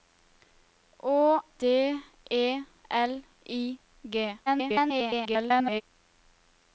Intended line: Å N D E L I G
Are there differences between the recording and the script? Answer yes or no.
yes